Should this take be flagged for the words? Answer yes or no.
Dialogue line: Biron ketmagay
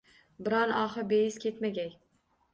yes